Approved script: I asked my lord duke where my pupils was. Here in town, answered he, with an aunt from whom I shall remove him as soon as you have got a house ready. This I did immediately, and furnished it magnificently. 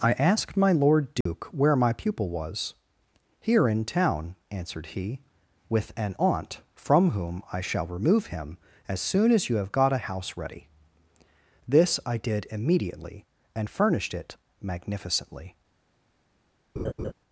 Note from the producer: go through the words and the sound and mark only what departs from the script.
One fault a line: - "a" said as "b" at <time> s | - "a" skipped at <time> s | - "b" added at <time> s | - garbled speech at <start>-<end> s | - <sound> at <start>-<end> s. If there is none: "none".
- dropout at 1.2-1.3 s
- "pupils" said as "pupil" at 1.9 s
- laugh at 16.8-17.1 s